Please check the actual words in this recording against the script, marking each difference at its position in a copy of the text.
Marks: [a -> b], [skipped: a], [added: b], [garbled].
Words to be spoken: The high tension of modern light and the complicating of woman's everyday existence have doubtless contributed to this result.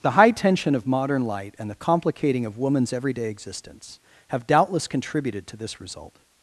The high tension of modern light and the complicating of woman's everyday existence have doubtless contributed to this result.